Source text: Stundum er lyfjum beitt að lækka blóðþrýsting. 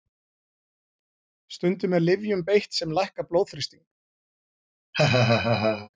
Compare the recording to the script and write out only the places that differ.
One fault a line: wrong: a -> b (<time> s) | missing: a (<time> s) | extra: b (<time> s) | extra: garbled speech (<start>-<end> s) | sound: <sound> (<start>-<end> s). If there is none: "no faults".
wrong: að -> sem (2.8 s)
sound: laugh (4.9-5.9 s)